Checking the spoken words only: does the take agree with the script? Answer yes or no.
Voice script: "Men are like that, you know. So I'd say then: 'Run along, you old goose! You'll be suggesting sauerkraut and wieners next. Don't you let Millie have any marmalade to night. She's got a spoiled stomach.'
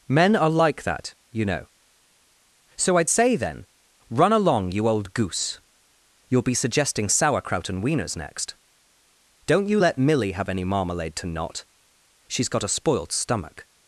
no